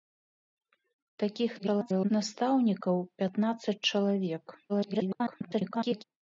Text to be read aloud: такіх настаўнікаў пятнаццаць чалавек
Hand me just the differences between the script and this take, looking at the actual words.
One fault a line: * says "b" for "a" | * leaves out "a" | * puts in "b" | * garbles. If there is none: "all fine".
* garbles
* garbles